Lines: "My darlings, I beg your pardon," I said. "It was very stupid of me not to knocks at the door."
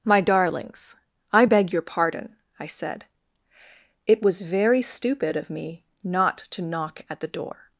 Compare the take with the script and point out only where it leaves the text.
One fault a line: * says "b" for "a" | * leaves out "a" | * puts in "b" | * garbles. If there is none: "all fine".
* says "knock" for "knocks"